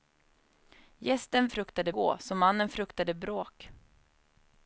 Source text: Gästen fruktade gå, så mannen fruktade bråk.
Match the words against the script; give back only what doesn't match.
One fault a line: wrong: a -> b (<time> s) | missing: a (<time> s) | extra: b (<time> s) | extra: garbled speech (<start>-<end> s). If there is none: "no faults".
no faults